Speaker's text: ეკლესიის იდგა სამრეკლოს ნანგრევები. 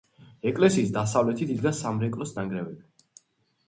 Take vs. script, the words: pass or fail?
fail